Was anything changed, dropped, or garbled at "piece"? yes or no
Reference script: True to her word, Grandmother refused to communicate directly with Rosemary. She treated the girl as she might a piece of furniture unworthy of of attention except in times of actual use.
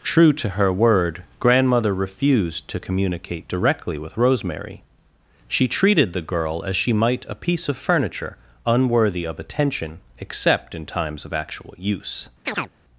no